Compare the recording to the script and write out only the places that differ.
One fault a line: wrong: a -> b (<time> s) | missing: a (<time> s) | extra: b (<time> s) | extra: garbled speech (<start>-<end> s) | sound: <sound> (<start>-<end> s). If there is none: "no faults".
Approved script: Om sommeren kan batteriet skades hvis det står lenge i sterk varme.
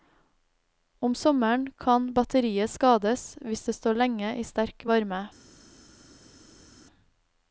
no faults